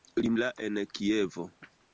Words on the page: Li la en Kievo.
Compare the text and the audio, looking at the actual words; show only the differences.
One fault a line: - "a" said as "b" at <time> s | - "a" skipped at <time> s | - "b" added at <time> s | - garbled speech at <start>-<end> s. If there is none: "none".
none